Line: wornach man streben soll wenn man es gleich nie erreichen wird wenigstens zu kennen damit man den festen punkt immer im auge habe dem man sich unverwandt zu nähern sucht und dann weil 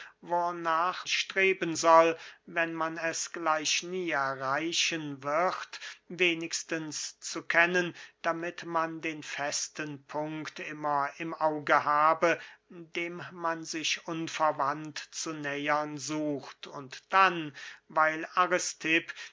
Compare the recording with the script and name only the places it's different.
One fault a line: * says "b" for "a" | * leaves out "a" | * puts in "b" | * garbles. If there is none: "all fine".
* leaves out "man"